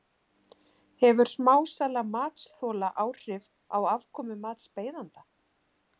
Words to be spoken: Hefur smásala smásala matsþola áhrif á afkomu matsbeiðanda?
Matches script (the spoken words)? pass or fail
fail